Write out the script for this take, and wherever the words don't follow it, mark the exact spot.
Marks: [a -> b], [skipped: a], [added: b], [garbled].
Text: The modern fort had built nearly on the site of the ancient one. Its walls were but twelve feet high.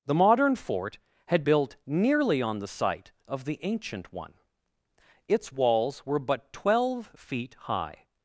The modern fort had built nearly on the site of the ancient one. Its walls were but twelve feet high.